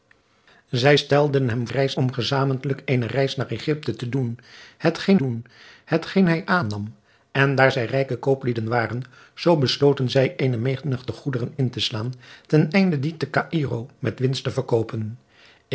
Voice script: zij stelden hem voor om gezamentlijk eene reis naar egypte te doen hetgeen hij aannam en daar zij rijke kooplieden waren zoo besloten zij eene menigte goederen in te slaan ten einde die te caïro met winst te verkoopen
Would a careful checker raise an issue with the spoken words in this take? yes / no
yes